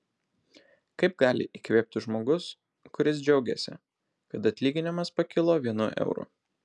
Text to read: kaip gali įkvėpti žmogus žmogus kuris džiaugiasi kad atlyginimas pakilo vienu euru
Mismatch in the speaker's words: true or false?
true